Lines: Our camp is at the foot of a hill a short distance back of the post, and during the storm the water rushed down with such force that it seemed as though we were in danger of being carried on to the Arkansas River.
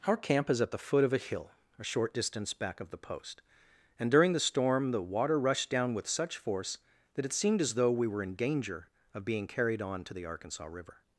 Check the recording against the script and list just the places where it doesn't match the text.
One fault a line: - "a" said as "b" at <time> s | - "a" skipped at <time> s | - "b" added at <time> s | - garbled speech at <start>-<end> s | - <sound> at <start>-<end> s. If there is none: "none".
none